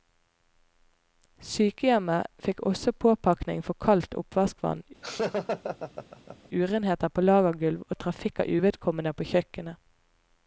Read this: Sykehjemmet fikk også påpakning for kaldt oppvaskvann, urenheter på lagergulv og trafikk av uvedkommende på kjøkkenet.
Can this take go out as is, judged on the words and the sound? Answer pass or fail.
fail